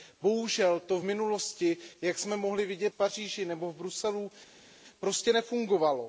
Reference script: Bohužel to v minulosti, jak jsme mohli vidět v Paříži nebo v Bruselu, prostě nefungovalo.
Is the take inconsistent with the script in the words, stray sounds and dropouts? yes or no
no